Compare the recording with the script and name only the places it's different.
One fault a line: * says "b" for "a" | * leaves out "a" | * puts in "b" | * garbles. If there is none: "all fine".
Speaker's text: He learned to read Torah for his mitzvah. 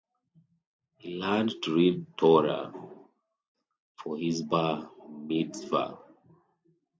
* puts in "bar"